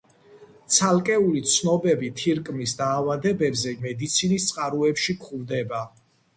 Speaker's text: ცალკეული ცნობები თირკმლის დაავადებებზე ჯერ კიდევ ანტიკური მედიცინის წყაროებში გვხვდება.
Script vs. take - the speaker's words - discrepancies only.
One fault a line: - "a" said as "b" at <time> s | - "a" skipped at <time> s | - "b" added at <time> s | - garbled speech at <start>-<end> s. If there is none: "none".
- "ჯერ კიდევ ანტიკური" skipped at 3.8 s